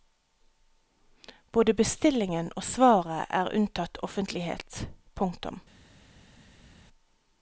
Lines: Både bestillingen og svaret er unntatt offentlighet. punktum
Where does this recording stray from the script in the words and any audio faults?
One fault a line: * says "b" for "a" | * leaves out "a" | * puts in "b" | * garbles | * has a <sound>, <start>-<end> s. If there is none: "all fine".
all fine